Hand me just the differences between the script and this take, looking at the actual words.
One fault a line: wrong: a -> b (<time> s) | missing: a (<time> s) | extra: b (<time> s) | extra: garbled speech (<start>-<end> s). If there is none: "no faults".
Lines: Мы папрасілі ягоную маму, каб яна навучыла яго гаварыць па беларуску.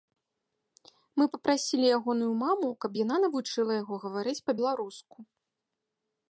no faults